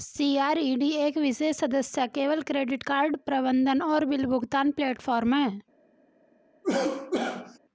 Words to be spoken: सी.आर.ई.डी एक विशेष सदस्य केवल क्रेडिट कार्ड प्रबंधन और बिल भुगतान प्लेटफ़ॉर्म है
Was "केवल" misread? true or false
false